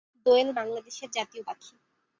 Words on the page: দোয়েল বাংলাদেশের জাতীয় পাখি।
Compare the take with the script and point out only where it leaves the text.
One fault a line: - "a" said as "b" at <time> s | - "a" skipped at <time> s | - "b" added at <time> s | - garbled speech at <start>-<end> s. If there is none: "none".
none